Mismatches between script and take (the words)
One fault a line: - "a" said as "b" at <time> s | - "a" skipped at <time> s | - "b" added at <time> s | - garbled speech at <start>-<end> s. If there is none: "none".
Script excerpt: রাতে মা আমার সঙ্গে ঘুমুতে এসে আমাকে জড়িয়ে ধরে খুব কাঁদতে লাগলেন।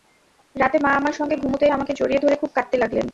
- "এসে" skipped at 1.6 s